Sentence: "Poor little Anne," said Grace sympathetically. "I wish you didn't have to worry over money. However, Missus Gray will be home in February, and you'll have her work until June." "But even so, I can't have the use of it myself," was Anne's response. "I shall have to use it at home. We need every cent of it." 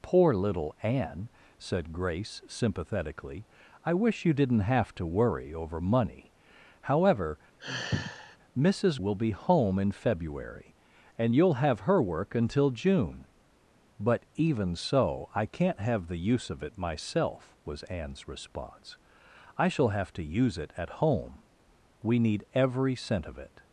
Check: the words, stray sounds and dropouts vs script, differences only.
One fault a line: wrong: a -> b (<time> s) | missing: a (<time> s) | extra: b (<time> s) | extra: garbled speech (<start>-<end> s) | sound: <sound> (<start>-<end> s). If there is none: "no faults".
sound: sigh (7.6-8.4 s)
missing: Gray (9.0 s)